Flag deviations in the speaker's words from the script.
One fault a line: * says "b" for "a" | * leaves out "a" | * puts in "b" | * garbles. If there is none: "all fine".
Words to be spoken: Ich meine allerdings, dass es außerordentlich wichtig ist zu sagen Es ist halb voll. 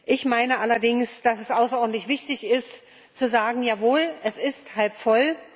* puts in "Jawohl"